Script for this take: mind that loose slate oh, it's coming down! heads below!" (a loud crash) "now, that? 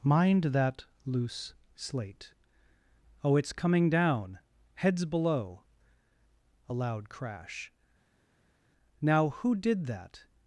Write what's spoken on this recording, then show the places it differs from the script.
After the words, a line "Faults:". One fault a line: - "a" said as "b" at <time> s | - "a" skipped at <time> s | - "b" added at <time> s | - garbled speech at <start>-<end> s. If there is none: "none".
mind that loose slate oh, it's coming down! heads below!" (a loud crash) "now, who did that?
Faults:
- "who did" added at 9.3 s